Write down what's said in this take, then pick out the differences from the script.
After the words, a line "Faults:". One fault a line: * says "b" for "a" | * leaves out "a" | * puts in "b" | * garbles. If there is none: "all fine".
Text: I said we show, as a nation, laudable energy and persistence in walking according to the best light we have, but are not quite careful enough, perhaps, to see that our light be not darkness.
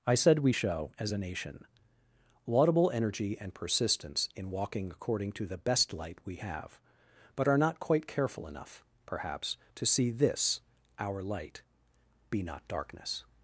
I said we show, as a nation, laudable energy and persistence in walking according to the best light we have, but are not quite careful enough, perhaps, to see this our light be not darkness.
Faults:
* says "this" for "that"